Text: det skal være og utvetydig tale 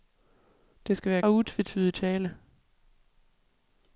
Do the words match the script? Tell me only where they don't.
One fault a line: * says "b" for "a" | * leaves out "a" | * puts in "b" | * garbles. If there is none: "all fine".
all fine